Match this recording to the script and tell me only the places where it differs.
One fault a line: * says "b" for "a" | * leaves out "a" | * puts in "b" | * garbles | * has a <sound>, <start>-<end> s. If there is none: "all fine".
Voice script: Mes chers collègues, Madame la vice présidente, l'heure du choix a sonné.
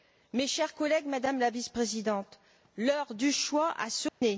* has a dropout, 4.1-4.2 s